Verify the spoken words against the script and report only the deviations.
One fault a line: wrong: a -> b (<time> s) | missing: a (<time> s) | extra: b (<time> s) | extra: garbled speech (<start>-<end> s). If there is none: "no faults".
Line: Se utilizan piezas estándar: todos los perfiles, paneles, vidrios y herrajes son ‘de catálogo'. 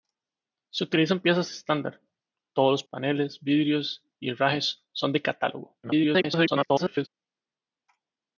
missing: perfiles (2.8 s)
extra: garbled speech (5.8-7.1 s)